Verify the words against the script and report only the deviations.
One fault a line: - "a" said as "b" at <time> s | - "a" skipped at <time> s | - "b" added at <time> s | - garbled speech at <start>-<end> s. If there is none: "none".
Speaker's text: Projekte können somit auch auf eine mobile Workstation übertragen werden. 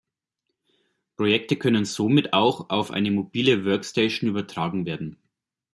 none